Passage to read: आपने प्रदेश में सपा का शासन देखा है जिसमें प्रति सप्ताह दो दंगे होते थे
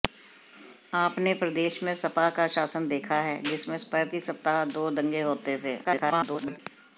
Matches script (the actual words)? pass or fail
fail